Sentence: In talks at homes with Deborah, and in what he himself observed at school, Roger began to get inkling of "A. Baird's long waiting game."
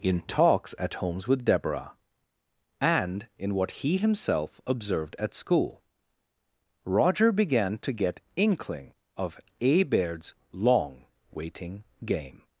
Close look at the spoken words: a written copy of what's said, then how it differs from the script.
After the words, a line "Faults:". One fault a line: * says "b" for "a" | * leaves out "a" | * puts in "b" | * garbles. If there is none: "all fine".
In talks at homes with Deborah, and in what he himself observed at school, Roger began to get inkling of "A. Baird's long waiting game."
Faults:
all fine